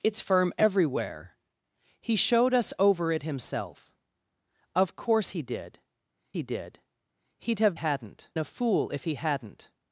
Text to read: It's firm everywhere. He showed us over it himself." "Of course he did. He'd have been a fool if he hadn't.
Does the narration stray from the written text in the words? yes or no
yes